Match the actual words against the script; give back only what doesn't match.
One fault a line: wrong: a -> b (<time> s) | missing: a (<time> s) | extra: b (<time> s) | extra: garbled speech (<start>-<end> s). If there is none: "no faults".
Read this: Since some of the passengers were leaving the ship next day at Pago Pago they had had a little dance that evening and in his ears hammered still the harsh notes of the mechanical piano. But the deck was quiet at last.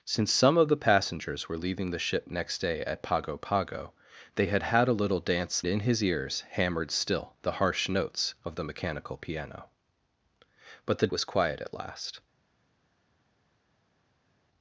missing: that evening and (5.6 s)
missing: deck (11.1 s)